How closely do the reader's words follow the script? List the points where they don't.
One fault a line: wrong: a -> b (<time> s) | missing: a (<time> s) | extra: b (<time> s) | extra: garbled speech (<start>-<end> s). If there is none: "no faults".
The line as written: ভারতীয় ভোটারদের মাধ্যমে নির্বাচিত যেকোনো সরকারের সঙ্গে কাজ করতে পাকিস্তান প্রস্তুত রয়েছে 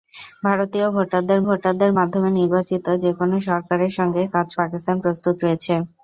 extra: ভোটারদের (1.5 s)
missing: করতে (4.5 s)